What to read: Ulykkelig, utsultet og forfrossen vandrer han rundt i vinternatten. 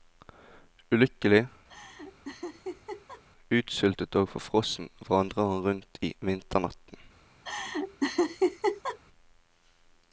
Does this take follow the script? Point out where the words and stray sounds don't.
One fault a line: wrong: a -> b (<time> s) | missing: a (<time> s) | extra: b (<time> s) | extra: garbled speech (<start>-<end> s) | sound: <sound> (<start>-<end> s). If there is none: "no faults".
sound: laugh (1.7-3.2 s)
sound: laugh (7.4-9.0 s)